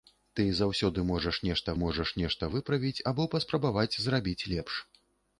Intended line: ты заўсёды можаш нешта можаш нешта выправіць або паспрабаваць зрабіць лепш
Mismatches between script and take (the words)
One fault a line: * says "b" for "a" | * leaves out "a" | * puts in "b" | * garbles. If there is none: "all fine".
all fine